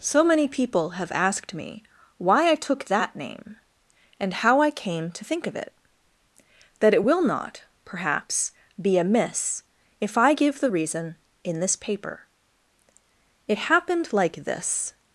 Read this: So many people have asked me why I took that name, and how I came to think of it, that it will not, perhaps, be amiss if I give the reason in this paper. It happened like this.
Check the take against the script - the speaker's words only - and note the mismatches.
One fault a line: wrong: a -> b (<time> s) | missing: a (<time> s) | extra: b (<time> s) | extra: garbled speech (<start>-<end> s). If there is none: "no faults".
no faults